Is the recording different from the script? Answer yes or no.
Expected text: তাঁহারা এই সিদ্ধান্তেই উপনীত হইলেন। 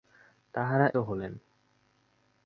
yes